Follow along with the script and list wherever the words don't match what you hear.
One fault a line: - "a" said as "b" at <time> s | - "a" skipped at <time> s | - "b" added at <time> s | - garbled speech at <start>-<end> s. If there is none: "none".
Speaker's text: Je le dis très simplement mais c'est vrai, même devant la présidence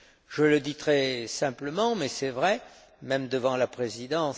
none